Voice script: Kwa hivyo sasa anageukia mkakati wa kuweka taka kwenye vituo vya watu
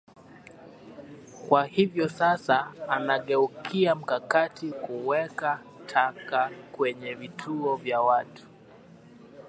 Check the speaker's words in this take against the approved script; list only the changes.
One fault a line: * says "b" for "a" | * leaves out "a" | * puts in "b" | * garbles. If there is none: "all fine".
* leaves out "wa"